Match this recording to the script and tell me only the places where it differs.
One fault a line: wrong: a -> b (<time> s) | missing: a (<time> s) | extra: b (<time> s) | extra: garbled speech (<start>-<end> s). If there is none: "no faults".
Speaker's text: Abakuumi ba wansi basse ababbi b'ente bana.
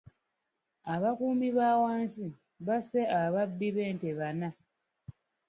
no faults